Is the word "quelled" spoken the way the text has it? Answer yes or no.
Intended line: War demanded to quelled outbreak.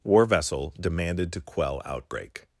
no